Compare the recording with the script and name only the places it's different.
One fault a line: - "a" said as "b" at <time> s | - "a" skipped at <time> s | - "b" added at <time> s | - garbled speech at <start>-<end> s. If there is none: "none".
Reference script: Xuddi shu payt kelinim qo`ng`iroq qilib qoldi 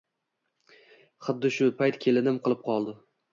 - "qo`ng`iroq" skipped at 2.4 s